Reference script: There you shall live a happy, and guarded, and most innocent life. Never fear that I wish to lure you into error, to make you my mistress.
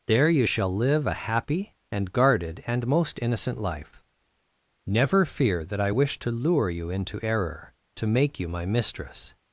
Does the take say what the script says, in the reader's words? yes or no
yes